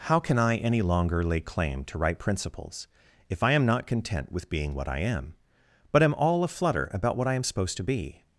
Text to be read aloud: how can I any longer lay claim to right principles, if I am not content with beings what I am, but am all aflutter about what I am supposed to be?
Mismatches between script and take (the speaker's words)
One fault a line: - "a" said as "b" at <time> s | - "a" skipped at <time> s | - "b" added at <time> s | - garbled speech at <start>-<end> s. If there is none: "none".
- "beings" said as "being" at 4.5 s